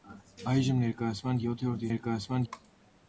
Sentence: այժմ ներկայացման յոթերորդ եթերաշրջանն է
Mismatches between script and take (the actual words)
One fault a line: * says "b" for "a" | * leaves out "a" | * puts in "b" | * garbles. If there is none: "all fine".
* says "ներկայացման" for "եթերաշրջանն"